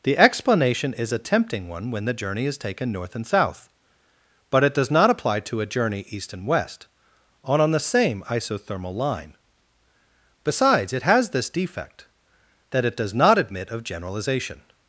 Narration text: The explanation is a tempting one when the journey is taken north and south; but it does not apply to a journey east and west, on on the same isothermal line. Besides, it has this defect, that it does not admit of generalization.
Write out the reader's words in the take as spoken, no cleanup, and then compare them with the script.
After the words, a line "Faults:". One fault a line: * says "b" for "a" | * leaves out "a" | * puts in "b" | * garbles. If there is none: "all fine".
The explanation is a tempting one when the journey is taken north and south; but it does not apply to a journey east and west, on on the same isothermal line. Besides, it has this defect, that it does not admit of generalization.
Faults:
all fine